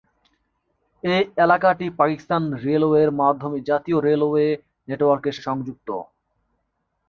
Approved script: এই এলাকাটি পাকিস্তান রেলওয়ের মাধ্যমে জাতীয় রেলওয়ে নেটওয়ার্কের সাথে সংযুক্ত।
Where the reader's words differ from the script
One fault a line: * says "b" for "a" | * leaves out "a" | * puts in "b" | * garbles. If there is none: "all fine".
* leaves out "সাথে"